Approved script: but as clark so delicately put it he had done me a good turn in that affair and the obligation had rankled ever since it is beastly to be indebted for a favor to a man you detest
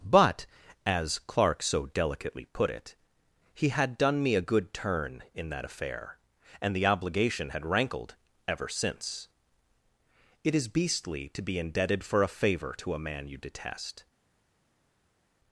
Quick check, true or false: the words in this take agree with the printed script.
true